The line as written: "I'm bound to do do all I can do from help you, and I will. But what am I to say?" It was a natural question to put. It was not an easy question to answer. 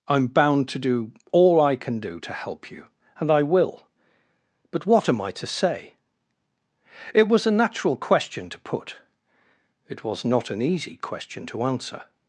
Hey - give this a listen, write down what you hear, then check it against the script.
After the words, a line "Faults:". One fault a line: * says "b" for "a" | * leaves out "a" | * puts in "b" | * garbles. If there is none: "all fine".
"I'm bound to do all I can do to help you, and I will. But what am I to say?" It was a natural question to put. It was not an easy question to answer.
Faults:
* leaves out "do"
* says "to" for "from"